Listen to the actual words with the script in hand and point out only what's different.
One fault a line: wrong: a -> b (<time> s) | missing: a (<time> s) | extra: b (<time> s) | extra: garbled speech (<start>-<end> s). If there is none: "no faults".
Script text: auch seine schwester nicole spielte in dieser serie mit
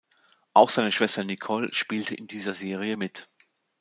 no faults